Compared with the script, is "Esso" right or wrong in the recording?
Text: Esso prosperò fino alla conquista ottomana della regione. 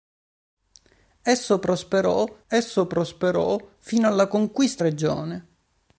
right